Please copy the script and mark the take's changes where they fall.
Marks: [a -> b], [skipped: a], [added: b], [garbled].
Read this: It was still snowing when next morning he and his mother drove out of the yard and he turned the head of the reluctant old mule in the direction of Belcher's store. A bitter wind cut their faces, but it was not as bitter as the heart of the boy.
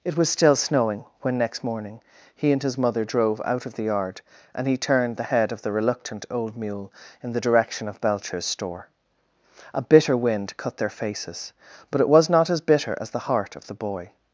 It was still snowing when next morning he and his mother drove out of the yard and he turned the head of the reluctant old mule in the direction of Belcher's store. A bitter wind cut their faces, but it was not as bitter as the heart of the boy.